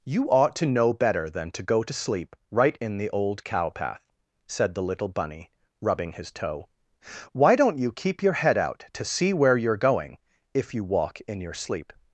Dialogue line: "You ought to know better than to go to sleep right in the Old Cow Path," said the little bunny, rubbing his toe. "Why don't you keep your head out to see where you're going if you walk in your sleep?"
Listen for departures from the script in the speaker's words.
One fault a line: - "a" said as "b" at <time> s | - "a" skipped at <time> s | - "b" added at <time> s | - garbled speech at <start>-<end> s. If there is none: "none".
none